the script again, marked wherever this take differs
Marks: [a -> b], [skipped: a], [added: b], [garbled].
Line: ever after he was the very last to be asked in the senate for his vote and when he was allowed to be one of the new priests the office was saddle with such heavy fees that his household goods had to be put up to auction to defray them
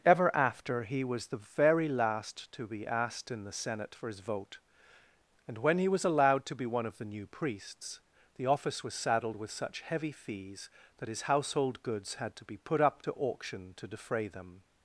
ever after he was the very last to be asked in the senate for his vote and when he was allowed to be one of the new priests the office was [saddle -> saddled] with such heavy fees that his household goods had to be put up to auction to defray them